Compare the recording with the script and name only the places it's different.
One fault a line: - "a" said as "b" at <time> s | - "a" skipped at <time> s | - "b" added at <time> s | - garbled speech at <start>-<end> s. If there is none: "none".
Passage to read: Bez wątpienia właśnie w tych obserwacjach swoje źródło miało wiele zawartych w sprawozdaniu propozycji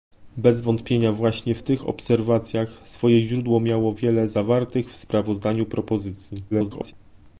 - garbled speech at 6.5-6.9 s